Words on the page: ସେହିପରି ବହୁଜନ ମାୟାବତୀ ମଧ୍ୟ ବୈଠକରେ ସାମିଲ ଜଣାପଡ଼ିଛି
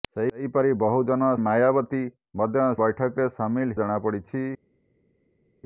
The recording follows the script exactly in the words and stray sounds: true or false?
true